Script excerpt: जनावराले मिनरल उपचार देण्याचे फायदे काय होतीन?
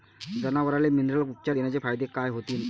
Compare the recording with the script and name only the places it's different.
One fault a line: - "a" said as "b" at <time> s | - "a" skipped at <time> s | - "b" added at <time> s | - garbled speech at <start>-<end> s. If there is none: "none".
none